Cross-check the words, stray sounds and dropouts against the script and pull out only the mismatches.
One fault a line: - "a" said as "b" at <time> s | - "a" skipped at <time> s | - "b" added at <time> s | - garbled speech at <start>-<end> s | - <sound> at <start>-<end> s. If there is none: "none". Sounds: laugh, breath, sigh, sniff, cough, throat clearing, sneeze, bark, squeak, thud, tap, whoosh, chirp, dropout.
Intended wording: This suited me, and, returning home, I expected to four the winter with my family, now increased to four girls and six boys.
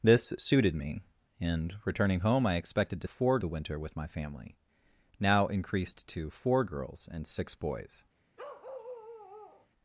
- bark at 8.4-9.7 s